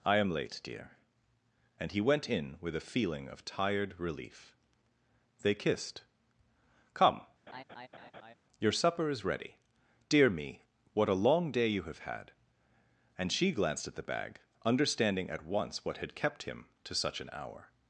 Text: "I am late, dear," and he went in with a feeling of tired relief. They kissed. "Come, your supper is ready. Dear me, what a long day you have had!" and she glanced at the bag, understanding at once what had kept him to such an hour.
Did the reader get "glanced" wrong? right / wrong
right